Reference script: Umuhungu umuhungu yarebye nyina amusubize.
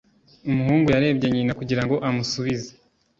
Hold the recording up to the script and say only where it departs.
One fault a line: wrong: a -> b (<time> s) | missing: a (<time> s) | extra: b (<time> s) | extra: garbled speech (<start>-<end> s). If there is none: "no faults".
missing: umuhungu (0.9 s)
extra: kugira ngo (1.6 s)